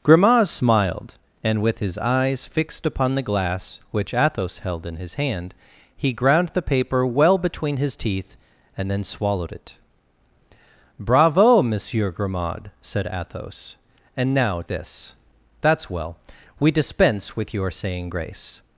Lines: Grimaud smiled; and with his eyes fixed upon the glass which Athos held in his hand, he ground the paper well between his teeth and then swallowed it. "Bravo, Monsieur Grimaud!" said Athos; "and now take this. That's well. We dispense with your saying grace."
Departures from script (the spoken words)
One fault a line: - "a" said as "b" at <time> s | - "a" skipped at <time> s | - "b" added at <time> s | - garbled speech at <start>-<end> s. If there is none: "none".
- "take" skipped at 14.6 s